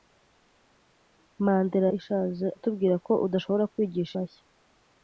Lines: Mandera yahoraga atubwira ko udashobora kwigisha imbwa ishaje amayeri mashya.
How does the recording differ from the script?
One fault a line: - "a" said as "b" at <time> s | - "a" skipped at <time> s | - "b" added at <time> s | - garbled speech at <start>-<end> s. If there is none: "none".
- "yahoraga" said as "ishaje" at 2.0 s
- "imbwa ishaje amayeri" skipped at 4.1 s